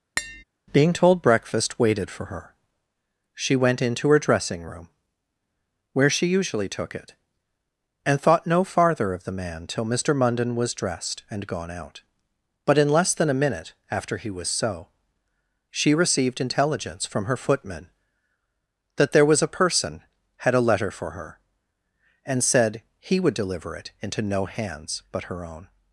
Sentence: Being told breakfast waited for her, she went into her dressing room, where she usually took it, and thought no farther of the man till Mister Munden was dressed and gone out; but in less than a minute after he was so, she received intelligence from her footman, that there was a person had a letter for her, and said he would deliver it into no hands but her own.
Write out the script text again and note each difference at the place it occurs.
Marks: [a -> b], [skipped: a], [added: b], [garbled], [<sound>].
[tap] Being told breakfast waited for her, she went into her dressing room, where she usually took it, and thought no farther of the man till Mister Munden was dressed and gone out; but in less than a minute after he was so, she received intelligence from her footman, that there was a person had a letter for her, and said he would deliver it into no hands but her own.